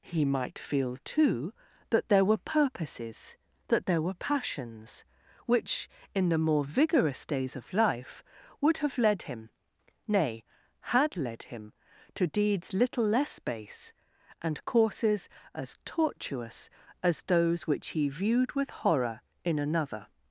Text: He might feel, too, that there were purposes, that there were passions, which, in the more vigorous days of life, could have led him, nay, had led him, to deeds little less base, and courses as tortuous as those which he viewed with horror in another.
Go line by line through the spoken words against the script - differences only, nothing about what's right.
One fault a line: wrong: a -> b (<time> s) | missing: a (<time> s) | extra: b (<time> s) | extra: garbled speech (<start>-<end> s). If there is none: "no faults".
wrong: could -> would (8.6 s)